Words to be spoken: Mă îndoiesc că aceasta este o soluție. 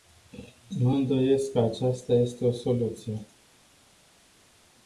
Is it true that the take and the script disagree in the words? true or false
false